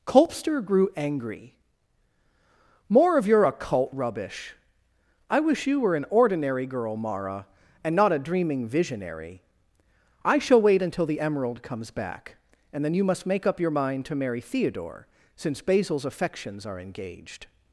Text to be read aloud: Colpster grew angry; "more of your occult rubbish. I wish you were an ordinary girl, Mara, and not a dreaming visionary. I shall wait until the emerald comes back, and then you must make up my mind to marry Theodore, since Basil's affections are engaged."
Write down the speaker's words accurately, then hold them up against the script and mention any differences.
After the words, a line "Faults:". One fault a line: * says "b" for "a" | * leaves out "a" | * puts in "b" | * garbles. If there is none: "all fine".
Colpster grew angry; "more of your occult rubbish. I wish you were an ordinary girl, Mara, and not a dreaming visionary. I shall wait until the emerald comes back, and then you must make up your mind to marry Theodore, since Basil's affections are engaged."
Faults:
* says "your" for "my"